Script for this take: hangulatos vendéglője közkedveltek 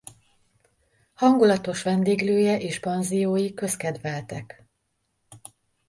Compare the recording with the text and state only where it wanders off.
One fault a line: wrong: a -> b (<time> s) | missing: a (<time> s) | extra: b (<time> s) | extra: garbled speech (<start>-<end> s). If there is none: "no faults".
extra: és panziói (2.6 s)